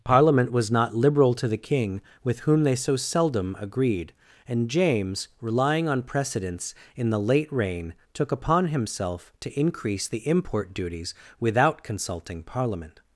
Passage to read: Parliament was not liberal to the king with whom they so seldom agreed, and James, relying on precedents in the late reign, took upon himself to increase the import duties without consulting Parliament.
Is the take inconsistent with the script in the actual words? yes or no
no